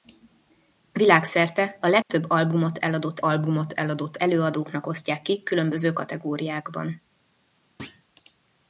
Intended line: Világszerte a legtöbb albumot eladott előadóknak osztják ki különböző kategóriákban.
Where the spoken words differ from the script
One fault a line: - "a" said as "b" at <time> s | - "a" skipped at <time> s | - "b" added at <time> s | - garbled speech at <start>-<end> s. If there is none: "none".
- "albumot eladott" added at 3.2 s